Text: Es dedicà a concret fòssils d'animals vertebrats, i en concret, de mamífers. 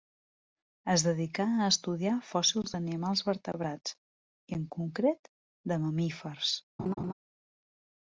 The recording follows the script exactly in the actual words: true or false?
false